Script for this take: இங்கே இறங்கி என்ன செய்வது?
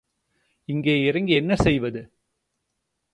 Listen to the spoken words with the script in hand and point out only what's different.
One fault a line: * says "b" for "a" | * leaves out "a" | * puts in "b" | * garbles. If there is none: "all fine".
all fine